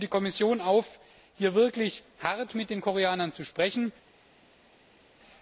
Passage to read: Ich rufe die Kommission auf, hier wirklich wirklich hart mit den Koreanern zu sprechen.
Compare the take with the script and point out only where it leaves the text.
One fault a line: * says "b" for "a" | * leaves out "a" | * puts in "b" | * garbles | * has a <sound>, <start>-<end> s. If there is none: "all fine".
* leaves out "wirklich"